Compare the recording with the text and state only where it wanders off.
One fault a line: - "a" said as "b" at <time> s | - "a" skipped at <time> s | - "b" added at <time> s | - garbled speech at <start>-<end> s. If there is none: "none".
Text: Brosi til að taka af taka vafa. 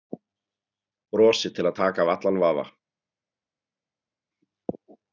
- "taka" said as "allan" at 2.2 s